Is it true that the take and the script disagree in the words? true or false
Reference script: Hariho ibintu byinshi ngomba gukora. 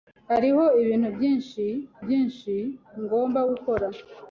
true